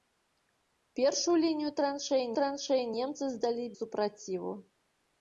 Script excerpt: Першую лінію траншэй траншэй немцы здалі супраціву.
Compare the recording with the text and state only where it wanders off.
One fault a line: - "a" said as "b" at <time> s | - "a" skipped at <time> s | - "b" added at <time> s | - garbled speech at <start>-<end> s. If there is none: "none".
none